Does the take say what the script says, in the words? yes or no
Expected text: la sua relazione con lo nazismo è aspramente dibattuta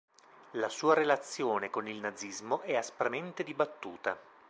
no